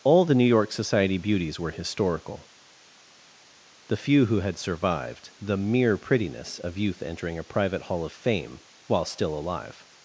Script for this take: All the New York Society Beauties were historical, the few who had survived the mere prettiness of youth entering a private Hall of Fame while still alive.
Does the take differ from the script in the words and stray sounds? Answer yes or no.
no